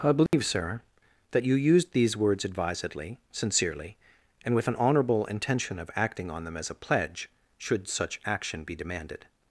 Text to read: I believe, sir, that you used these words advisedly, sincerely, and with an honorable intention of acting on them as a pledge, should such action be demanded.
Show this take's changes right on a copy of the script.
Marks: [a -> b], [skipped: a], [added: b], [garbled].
I believe, sir, that you used these words advisedly, sincerely, and with an honorable intention of acting on them as a pledge, should such action be demanded.